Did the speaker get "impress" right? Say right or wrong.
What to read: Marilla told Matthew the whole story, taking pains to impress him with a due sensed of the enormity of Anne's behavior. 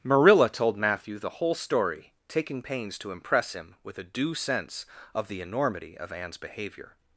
right